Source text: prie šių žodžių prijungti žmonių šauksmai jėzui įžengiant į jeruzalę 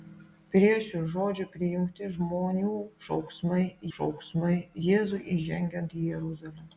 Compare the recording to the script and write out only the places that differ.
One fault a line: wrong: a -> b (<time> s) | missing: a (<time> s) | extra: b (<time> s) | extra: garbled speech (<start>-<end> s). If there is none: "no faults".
extra: šauksmai (4.0 s)